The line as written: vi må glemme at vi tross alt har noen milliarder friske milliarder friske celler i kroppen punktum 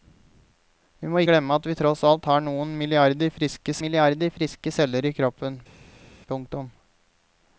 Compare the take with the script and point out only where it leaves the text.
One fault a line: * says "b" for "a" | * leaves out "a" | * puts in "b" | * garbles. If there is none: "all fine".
all fine